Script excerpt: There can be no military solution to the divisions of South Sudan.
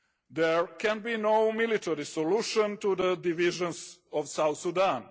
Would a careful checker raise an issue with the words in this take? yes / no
no